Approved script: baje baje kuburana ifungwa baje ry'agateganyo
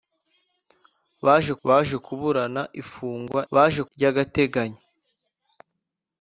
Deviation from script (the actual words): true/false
false